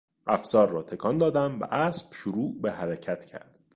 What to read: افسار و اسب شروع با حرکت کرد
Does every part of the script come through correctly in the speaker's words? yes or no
no